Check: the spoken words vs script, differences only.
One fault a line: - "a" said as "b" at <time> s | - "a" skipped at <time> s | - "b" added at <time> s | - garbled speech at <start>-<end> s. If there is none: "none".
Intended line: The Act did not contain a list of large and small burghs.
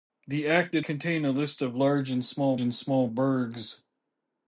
- "not" skipped at 0.8 s
- "and small" added at 2.6 s